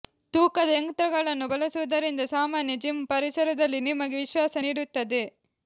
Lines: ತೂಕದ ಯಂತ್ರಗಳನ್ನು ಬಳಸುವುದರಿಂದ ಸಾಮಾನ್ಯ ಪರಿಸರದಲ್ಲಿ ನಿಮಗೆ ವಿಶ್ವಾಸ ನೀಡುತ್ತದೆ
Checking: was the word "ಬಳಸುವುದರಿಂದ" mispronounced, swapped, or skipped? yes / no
no